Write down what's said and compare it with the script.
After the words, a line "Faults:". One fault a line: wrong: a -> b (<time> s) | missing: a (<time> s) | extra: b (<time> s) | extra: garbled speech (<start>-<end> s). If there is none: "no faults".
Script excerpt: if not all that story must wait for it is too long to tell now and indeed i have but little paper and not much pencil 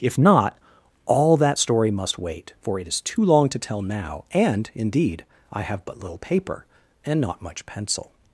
if not all that story must wait for it is too long to tell now and indeed i have but little paper and not much pencil
Faults:
no faults